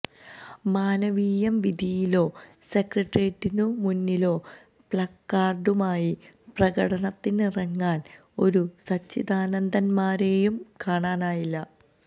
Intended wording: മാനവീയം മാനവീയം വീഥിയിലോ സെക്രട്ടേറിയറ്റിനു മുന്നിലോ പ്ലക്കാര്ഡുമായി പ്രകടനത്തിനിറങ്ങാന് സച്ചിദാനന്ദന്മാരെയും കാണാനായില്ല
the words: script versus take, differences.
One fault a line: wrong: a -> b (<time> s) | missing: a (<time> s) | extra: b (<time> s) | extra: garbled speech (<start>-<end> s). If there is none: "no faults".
missing: മാനവീയം (1.6 s)
extra: ഒരു (8.4 s)